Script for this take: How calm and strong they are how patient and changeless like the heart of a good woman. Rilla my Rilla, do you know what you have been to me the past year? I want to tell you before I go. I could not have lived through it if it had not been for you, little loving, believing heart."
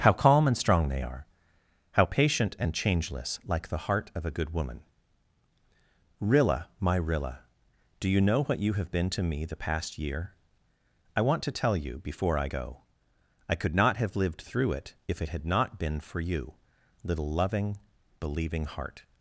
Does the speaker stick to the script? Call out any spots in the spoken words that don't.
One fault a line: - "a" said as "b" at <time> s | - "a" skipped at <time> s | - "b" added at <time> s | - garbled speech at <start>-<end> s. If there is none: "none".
none